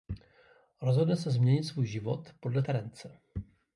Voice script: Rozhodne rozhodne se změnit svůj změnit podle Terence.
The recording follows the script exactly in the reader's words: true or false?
false